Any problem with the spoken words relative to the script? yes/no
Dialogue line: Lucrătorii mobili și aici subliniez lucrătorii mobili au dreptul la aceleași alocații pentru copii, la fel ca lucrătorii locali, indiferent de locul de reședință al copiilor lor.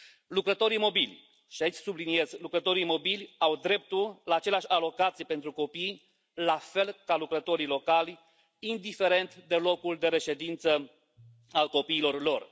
no